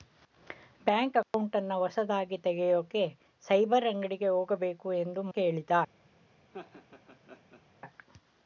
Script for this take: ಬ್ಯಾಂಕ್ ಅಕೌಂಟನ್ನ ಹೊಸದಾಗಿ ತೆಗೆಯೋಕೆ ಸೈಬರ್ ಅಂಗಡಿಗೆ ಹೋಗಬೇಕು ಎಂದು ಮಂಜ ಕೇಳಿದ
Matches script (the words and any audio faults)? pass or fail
fail